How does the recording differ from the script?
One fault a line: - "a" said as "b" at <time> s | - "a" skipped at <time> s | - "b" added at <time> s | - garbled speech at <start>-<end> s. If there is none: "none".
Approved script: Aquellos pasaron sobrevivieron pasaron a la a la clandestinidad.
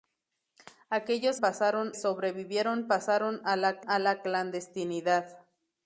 none